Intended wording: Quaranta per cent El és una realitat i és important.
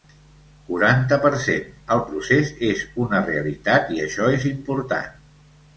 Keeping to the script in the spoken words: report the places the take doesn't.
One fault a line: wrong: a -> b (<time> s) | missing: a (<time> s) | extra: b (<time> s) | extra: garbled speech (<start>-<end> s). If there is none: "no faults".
extra: procés (2.1 s)
extra: això (4.1 s)